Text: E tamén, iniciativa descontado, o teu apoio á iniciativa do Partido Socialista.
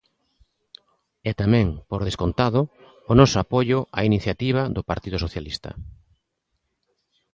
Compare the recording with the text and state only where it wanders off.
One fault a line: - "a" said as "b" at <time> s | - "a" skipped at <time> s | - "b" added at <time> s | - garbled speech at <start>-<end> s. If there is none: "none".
- "iniciativa" said as "por" at 1.9 s
- "teu" said as "noso" at 3.2 s